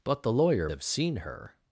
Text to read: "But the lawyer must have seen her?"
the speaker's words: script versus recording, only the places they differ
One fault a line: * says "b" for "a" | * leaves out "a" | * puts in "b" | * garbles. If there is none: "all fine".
* leaves out "must"